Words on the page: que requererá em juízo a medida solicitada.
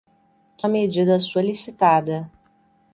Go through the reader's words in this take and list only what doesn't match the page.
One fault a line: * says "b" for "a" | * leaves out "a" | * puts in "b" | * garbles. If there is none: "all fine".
* leaves out "requererá em juízo"